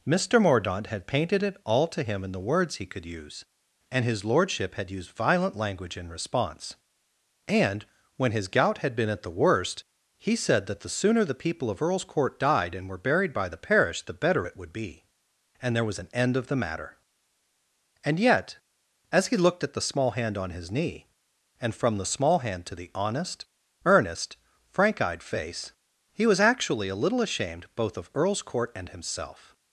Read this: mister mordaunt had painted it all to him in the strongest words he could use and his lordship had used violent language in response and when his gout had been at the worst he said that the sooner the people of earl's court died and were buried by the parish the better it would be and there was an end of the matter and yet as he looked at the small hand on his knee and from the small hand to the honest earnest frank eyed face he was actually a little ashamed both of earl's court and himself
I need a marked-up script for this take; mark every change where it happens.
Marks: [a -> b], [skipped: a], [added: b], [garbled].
mister mordaunt had painted it all to him in the [skipped: strongest] words he could use and his lordship had used violent language in response and when his gout had been at the worst he said that the sooner the people of earl's court died and were buried by the parish the better it would be and there was an end of the matter and yet as he looked at the small hand on his knee and from the small hand to the honest earnest frank eyed face he was actually a little ashamed both of earl's court and himself